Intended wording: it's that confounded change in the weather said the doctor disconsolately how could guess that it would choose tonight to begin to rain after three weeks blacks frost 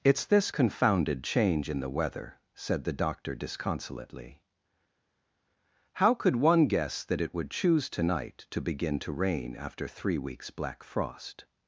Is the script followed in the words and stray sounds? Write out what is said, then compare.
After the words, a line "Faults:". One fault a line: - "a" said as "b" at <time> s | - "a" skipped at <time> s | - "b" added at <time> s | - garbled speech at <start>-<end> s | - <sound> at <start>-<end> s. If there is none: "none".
it's this confounded change in the weather said the doctor disconsolately how could one guess that it would choose tonight to begin to rain after three weeks black frost
Faults:
- "that" said as "this" at 0.2 s
- "one" added at 6.3 s
- "blacks" said as "black" at 10.5 s